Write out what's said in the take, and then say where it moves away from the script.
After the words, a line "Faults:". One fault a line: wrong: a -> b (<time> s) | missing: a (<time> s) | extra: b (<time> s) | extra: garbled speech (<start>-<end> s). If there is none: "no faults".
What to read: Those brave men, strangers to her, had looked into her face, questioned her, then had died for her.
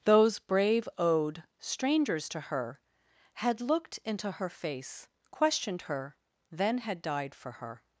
Those brave owed, strangers to her, had looked into her face, questioned her, then had died for her.
Faults:
wrong: men -> owed (1.0 s)